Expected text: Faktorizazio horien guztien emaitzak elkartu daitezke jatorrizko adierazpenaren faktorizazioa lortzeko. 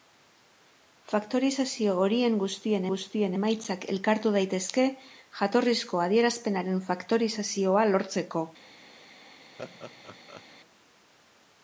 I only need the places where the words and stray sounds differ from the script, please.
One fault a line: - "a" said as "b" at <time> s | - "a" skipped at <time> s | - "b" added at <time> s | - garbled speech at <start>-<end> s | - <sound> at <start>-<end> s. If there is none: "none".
- "guztien" added at 2.9 s
- laugh at 9.6-10.4 s